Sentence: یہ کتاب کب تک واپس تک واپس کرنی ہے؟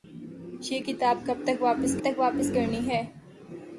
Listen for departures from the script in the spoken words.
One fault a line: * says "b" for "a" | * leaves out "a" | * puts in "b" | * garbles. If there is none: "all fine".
all fine